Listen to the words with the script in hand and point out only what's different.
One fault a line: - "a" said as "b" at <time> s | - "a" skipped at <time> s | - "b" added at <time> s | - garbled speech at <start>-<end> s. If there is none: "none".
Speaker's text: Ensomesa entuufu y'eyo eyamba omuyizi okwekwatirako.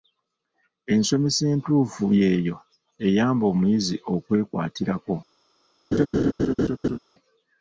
none